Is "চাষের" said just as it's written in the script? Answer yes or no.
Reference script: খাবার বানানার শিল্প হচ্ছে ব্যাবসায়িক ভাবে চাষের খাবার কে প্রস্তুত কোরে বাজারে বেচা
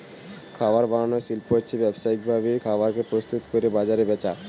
no